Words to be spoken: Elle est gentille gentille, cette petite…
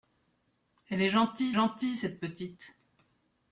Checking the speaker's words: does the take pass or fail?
pass